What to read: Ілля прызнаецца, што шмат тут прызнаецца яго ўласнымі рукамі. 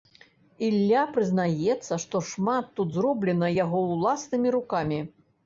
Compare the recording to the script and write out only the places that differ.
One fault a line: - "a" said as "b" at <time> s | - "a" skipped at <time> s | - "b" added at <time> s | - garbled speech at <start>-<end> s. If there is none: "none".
- "прызнаецца" said as "зроблена" at 3.0 s